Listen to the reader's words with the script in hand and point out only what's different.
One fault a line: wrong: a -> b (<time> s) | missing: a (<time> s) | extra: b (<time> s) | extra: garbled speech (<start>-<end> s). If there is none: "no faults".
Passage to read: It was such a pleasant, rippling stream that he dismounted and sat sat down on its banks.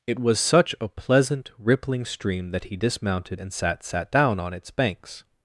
no faults